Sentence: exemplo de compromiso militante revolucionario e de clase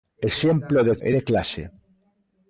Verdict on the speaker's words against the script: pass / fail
fail